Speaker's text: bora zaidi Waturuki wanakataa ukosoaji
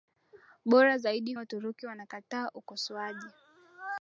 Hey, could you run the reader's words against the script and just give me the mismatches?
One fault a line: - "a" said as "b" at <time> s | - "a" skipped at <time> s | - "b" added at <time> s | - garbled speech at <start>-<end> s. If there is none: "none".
none